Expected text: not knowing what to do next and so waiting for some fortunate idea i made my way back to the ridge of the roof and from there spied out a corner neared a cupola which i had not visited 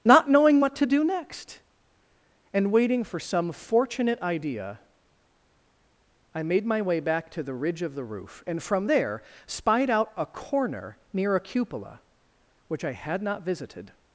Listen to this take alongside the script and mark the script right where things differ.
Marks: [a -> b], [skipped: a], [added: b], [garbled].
not knowing what to do next and [skipped: so] waiting for some fortunate idea i made my way back to the ridge of the roof and from there spied out a corner [neared -> near] a cupola which i had not visited